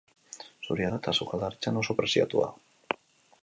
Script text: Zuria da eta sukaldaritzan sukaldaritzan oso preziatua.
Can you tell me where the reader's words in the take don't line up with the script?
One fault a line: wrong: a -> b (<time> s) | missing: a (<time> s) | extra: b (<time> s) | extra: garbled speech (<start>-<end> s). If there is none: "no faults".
missing: sukaldaritzan (1.8 s)